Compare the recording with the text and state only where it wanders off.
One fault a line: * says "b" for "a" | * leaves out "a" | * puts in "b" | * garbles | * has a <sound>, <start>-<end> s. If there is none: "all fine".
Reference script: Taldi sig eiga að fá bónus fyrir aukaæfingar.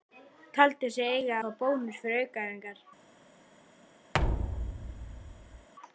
* leaves out "að"
* has a thud, 4.1-5.7 s